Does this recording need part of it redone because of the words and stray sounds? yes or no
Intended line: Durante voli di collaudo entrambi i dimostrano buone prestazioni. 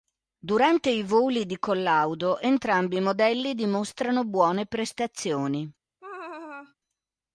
yes